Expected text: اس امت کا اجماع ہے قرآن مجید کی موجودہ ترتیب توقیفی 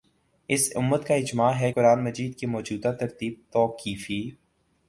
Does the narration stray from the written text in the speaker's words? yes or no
no